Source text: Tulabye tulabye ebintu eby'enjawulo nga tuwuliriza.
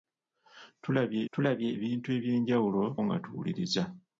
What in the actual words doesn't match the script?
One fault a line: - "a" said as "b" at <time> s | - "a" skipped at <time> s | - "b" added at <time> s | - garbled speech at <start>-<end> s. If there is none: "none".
none